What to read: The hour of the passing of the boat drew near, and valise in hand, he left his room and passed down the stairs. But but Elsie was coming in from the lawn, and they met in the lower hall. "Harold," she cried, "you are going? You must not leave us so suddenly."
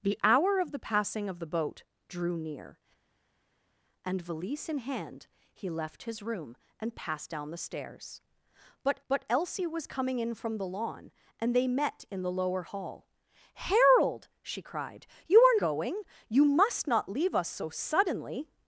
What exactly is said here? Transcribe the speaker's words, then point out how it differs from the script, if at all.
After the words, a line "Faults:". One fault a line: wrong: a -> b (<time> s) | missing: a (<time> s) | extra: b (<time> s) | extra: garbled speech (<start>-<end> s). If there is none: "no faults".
The hour of the passing of the boat drew near, and valise in hand, he left his room and passed down the stairs. But but Elsie was coming in from the lawn, and they met in the lower hall. "Harold," she cried, "you are going? You must not leave us so suddenly."
Faults:
no faults